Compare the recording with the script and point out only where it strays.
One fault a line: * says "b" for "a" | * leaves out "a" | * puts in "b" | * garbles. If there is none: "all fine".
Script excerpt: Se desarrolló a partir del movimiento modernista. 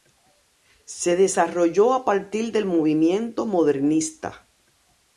all fine